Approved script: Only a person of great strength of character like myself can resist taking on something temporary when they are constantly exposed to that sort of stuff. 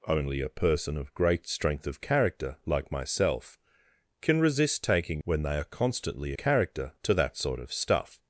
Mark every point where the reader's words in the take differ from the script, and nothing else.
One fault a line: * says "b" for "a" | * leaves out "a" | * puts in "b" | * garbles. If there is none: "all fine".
* leaves out "on something temporary"
* says "character" for "exposed"